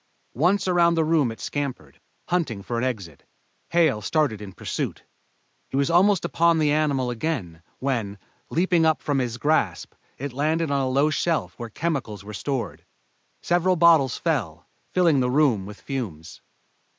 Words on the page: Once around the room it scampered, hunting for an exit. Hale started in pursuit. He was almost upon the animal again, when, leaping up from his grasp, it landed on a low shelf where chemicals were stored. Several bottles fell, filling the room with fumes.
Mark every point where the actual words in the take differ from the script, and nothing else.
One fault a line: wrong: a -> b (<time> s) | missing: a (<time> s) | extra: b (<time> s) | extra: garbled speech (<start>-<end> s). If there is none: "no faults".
no faults